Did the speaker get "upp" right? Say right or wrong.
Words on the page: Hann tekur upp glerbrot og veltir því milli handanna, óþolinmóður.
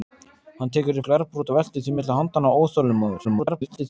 wrong